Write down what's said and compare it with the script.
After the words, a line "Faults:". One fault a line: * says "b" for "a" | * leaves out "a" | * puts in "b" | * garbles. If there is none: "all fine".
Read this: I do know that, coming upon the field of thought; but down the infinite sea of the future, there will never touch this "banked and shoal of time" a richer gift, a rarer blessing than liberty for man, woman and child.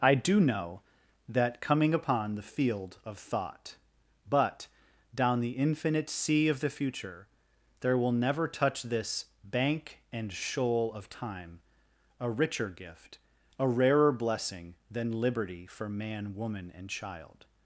I do know that, coming upon the field of thought; but down the infinite sea of the future, there will never touch this "bank and shoal of time" a richer gift, a rarer blessing than liberty for man, woman and child.
Faults:
* says "bank" for "banked"